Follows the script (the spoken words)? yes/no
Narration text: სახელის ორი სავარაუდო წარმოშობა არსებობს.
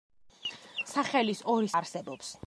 no